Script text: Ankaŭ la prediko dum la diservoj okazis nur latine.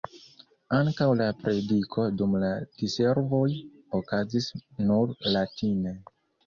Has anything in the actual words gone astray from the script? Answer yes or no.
no